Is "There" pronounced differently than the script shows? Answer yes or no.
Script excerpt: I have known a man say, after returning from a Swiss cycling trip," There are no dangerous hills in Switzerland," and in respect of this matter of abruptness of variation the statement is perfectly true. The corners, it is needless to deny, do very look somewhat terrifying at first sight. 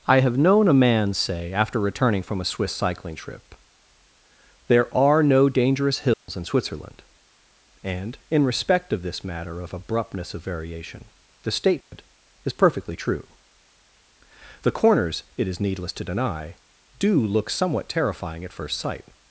no